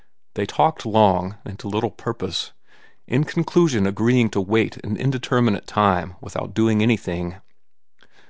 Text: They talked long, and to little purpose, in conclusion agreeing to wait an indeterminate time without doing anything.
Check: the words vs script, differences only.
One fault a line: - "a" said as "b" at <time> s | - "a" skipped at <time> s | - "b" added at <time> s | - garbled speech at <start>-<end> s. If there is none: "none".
none